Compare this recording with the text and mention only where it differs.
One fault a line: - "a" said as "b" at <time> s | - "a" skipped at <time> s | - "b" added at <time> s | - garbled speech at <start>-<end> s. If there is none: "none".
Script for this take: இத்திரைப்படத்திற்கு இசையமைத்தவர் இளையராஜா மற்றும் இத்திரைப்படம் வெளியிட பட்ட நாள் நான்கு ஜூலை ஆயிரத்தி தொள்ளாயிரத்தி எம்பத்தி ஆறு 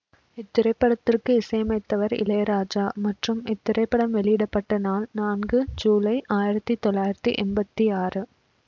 none